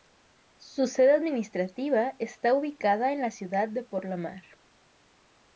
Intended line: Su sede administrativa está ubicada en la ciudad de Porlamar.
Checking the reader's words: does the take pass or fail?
pass